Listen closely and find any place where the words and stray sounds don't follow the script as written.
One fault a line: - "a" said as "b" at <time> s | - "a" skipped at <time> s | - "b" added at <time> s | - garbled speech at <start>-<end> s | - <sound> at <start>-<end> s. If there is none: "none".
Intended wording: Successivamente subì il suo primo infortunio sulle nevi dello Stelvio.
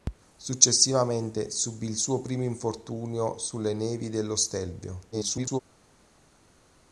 - garbled speech at 5.1-5.6 s